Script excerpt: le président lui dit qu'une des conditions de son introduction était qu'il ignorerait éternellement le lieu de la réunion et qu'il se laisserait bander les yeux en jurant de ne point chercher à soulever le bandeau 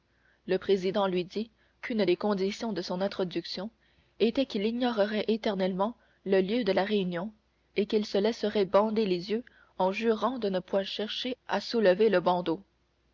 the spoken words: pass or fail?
pass